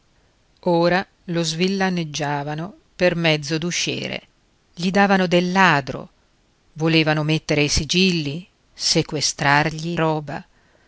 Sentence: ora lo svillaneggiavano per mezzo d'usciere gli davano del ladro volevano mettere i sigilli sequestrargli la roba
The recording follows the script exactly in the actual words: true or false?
false